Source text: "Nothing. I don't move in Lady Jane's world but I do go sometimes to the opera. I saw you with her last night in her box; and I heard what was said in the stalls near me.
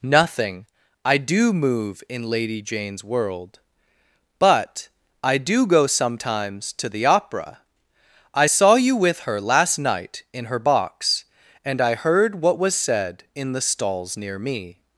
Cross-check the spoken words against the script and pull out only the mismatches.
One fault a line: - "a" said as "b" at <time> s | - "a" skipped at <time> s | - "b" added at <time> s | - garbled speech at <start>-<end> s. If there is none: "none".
- "don't" said as "do" at 1.2 s